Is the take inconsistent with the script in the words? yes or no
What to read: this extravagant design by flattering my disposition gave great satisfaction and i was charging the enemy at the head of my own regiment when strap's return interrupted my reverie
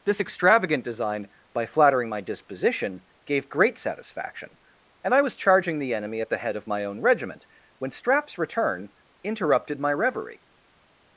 no